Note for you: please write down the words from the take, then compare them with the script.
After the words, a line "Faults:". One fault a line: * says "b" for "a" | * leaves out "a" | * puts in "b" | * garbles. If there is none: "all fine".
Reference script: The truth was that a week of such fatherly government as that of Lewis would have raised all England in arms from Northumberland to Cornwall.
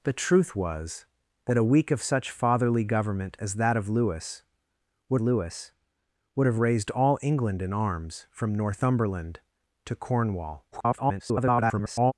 The truth was that a week of such fatherly government as that of Lewis would Lewis would have raised all England in arms from Northumberland to Cornwall. [garbled]
Faults:
* puts in "Lewis would"
* garbles